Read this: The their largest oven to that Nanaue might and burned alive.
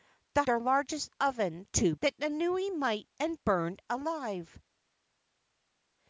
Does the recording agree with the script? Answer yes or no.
yes